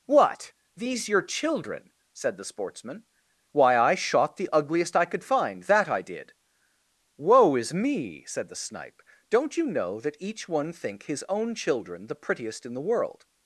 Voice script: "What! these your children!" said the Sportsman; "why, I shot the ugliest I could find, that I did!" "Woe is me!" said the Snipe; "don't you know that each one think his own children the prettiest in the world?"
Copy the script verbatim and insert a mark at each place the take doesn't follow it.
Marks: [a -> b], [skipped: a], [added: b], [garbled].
"What! these your children!" said the Sportsman; "why, I shot the ugliest I could find, that I did!" "Woe is me!" said the Snipe; "don't you know that each one think his own children the prettiest in the world?"